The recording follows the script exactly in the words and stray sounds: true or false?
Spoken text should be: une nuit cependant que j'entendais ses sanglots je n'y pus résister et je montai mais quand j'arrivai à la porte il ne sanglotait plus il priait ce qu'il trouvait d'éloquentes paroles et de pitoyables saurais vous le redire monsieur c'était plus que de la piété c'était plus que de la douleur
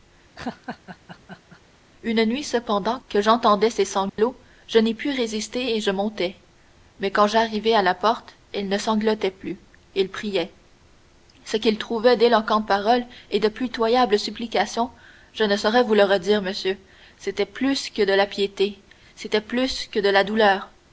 false